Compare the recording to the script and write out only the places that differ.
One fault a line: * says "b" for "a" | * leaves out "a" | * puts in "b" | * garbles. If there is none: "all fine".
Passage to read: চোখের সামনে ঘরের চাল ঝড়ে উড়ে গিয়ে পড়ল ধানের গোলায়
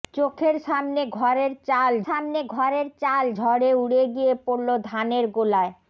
* puts in "সামনে ঘরের চাল"